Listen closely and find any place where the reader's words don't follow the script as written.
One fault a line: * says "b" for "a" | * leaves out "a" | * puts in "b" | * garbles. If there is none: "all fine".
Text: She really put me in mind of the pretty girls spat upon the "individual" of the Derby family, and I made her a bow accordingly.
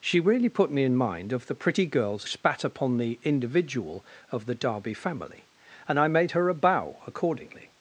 all fine